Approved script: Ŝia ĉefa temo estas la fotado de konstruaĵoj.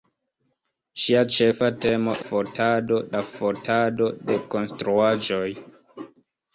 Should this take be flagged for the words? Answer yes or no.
yes